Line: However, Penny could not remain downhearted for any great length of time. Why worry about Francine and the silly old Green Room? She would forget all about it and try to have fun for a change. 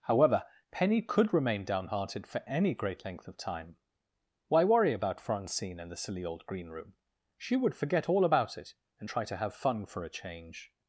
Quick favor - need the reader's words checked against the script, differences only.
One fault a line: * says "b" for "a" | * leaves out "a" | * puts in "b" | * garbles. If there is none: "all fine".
* leaves out "not"